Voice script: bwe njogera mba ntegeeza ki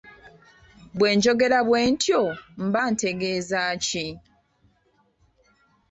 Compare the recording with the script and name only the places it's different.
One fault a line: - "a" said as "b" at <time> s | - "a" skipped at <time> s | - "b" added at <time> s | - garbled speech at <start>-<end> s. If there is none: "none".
- "bwe ntyo" added at 1.7 s